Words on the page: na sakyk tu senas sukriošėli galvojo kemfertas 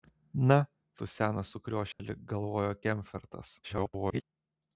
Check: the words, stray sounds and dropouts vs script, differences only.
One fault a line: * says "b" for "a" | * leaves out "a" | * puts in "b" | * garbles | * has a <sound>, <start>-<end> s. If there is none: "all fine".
* leaves out "sakyk"
* has a dropout, 1.9-2.0 s
* garbles